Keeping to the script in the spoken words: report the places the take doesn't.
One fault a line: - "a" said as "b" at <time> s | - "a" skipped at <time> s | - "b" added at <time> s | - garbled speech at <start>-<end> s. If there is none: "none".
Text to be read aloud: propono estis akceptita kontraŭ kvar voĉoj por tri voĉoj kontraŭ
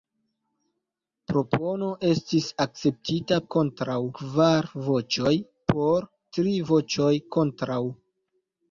none